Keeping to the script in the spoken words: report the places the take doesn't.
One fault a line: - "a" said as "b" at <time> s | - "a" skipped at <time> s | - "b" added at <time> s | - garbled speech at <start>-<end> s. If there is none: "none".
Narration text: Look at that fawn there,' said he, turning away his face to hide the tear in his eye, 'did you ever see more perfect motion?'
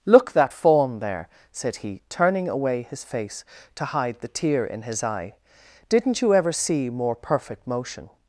- "at" skipped at 0.3 s
- "did" said as "didn't" at 5.9 s